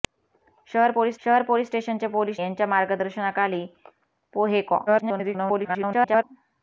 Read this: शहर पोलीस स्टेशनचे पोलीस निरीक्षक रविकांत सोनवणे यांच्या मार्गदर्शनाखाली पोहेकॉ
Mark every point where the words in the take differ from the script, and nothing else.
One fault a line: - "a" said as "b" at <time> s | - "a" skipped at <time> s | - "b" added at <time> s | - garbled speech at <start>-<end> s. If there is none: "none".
- "स्टेशनचे" said as "शहर" at 1.2 s
- "निरीक्षक रविकांत सोनवणे" said as "स्टेशनचे पोलीस" at 1.7 s
- garbled speech at 4.9-6.2 s